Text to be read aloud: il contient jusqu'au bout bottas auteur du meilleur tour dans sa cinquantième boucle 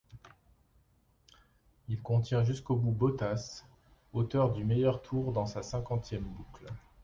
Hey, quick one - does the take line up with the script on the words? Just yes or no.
yes